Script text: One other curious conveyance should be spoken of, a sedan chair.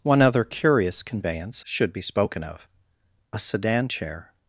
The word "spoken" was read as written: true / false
true